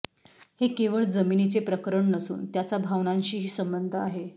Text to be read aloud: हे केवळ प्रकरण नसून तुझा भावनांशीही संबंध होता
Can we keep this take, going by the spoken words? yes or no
no